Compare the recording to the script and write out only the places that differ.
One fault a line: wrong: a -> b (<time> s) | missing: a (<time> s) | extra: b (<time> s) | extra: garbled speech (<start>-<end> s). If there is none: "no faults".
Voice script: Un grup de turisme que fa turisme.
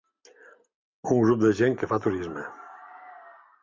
wrong: turisme -> gent (1.6 s)